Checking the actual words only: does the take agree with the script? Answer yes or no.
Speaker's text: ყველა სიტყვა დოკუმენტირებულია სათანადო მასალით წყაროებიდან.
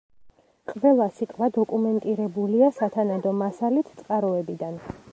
yes